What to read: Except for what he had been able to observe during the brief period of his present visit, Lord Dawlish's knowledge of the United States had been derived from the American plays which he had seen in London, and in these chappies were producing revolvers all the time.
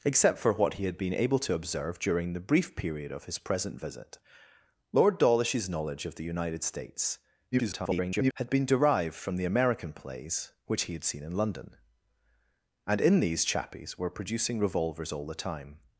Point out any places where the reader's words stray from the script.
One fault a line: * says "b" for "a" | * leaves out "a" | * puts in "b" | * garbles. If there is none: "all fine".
* garbles